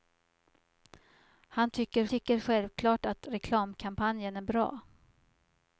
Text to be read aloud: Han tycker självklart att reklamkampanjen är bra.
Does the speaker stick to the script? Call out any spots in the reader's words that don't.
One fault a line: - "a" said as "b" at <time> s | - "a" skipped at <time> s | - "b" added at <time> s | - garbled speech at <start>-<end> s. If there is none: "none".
- "tycker" added at 2.1 s